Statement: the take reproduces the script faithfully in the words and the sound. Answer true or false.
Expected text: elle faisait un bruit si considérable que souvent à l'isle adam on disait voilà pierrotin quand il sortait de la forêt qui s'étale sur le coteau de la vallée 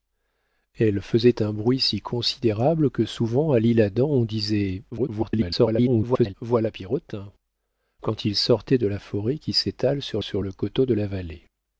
false